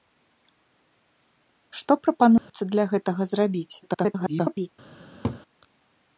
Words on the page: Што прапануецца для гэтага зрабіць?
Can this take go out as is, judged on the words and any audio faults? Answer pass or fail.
fail